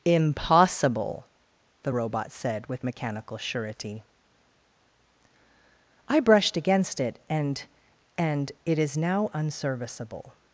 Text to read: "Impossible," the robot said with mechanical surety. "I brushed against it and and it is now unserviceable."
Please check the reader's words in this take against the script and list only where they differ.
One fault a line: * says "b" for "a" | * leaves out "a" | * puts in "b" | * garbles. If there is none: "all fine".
all fine